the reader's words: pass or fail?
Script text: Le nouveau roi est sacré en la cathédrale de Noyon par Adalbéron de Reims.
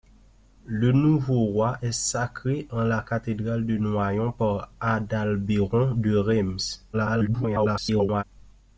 fail